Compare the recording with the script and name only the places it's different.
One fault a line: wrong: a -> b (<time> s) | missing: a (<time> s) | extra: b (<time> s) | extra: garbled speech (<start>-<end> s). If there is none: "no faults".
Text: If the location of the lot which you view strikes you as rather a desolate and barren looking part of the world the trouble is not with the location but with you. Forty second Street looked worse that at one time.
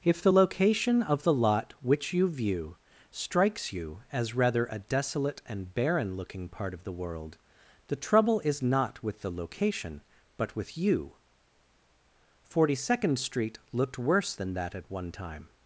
extra: than (14.3 s)